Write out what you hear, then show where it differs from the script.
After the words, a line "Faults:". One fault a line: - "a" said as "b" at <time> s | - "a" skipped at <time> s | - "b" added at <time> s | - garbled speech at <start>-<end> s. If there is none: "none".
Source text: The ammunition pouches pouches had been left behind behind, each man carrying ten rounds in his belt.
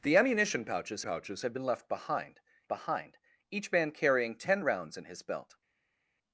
The ammunition pouches pouches had been left behind behind, each man carrying ten rounds in his belt.
Faults:
none